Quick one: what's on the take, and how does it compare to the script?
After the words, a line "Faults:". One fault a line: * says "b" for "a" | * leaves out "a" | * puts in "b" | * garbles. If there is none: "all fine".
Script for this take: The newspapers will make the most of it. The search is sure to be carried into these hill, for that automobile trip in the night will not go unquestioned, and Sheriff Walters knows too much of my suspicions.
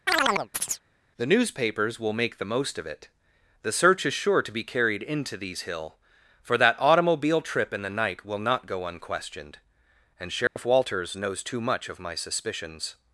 The newspapers will make the most of it. The search is sure to be carried into these hill, for that automobile trip in the night will not go unquestioned, and Sheriff Walters knows too much of my suspicions.
Faults:
all fine